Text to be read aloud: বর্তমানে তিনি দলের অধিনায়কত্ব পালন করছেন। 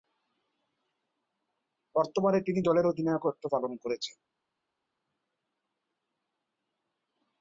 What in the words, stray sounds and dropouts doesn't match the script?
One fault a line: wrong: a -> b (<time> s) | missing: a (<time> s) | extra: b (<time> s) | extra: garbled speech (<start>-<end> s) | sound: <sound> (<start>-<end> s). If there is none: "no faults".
no faults